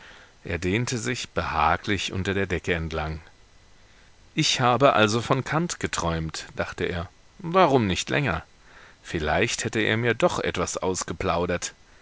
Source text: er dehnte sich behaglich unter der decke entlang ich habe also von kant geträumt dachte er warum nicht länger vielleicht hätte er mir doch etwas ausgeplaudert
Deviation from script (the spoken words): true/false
false